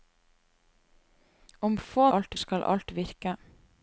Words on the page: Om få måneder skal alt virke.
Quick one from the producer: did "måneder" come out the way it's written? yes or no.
no